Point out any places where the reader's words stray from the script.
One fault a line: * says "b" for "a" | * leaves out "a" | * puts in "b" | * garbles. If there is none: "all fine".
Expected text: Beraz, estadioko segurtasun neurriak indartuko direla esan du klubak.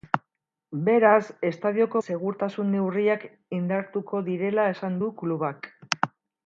all fine